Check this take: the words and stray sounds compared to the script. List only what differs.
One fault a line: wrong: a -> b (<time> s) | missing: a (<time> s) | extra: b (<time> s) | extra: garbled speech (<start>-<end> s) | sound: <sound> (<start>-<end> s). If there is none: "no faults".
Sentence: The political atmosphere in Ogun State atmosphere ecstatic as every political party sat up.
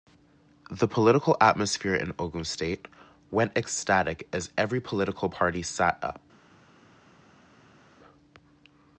wrong: atmosphere -> went (3.3 s)